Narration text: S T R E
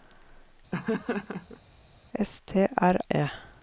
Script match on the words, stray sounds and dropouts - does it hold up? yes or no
no